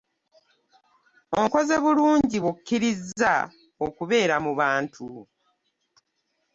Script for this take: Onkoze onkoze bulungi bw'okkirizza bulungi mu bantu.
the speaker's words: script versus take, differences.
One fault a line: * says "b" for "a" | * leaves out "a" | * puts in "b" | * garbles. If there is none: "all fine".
* leaves out "onkoze"
* says "okubeera" for "bulungi"